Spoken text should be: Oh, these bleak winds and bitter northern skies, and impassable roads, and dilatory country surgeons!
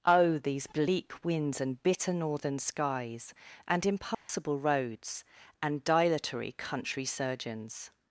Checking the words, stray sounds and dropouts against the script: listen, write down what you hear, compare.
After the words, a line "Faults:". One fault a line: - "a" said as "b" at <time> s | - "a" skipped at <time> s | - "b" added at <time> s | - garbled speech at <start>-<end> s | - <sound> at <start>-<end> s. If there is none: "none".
Oh, these bleak winds and bitter northern skies, and impassable roads, and dilatory country surgeons!
Faults:
- dropout at 4.1-4.3 s